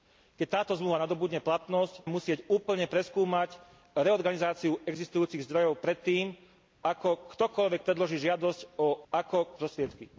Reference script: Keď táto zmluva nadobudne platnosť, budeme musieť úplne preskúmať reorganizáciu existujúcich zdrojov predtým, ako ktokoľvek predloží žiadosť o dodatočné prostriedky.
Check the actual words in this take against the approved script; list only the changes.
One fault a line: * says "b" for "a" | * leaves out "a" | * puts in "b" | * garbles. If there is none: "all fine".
* leaves out "budeme"
* says "ako" for "dodatočné"